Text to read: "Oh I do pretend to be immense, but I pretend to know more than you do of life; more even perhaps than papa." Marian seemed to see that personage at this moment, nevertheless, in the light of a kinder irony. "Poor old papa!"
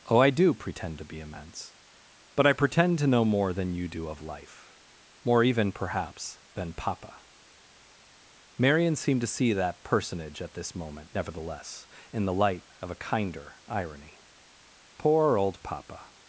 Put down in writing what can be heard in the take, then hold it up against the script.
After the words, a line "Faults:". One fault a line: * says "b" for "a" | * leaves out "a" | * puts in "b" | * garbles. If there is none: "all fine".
"Oh I do pretend to be immense, but I pretend to know more than you do of life; more even perhaps than papa." Marian seemed to see that personage at this moment, nevertheless, in the light of a kinder irony. "Poor old papa!"
Faults:
all fine